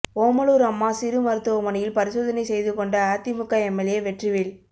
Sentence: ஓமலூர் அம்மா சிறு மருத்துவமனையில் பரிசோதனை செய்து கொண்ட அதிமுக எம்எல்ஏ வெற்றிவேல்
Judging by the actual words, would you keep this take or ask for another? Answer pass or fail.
pass